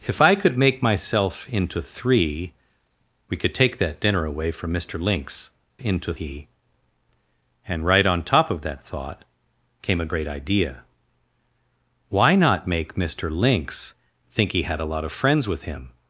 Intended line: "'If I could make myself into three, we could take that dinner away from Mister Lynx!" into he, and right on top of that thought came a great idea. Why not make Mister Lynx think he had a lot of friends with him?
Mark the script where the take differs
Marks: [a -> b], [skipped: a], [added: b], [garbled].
"'If I could make myself into three, we could take that dinner away from Mister Lynx!" into he, and right on top of that thought came a great idea. Why not make Mister Lynx think he had a lot of friends with him?